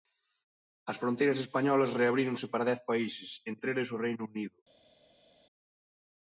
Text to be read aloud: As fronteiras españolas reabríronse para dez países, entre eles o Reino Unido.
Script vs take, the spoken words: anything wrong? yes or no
no